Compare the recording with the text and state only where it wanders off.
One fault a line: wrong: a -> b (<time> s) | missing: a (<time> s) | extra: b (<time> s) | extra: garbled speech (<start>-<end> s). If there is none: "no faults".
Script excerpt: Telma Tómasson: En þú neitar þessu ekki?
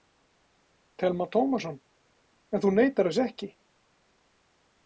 no faults